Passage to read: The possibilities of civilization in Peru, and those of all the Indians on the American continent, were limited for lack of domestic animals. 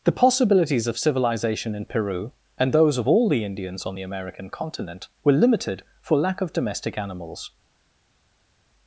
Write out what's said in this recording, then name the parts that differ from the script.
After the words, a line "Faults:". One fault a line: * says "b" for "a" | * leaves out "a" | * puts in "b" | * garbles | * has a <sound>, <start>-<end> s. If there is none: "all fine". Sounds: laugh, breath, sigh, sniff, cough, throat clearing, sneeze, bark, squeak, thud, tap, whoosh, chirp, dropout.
The possibilities of civilization in Peru, and those of all the Indians on the American continent, were limited for lack of domestic animals.
Faults:
all fine